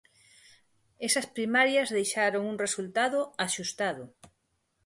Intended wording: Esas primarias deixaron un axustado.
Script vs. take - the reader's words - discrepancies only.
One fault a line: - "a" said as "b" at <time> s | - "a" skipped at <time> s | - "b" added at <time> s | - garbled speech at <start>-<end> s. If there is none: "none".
- "resultado" added at 2.6 s